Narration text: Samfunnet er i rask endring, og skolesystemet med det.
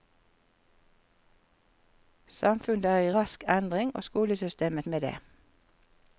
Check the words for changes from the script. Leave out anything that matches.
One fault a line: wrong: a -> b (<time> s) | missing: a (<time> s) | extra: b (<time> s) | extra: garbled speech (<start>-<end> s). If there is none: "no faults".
no faults